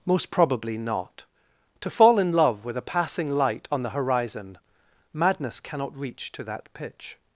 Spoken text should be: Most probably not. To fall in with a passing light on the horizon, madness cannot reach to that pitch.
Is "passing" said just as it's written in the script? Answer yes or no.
yes